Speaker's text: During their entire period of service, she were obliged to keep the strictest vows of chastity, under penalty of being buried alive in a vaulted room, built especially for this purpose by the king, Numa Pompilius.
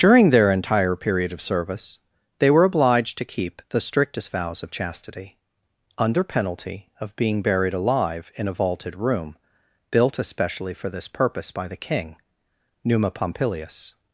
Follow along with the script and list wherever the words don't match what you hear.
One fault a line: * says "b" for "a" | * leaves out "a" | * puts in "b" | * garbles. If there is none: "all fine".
* says "they" for "she"